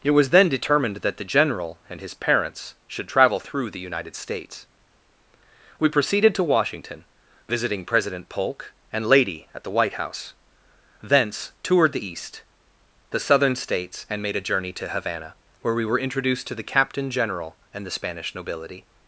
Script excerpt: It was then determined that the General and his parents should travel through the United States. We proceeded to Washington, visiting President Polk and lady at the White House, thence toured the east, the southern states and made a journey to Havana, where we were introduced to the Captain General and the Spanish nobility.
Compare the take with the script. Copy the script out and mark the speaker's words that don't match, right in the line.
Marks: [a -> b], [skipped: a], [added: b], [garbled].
It was then determined that the General and his parents should travel through the United States. We proceeded to Washington, visiting President Polk and lady at the White House, thence toured the east, the southern states and made a journey to Havana, where we were introduced to the Captain General and the Spanish nobility.